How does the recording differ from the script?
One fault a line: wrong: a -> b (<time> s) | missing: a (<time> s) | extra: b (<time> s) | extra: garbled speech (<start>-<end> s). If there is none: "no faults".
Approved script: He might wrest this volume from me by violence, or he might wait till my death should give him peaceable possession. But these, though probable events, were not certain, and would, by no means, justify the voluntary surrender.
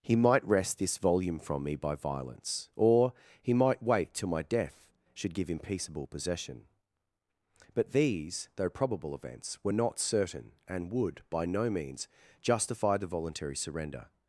no faults